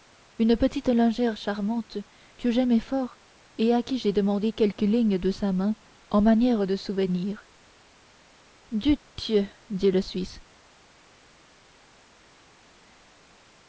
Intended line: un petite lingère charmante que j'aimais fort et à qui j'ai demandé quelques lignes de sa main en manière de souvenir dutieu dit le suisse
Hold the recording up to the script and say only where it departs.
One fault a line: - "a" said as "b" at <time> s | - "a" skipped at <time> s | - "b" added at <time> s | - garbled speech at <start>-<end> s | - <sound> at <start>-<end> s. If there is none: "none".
- "un" said as "une" at 0.4 s